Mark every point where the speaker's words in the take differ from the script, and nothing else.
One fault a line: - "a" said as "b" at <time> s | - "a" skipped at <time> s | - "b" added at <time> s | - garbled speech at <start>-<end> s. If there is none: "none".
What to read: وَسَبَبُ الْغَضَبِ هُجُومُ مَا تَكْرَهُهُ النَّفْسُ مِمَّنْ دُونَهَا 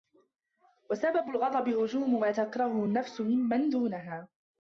none